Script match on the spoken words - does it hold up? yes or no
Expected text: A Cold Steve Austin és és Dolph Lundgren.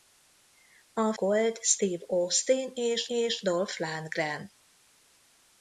yes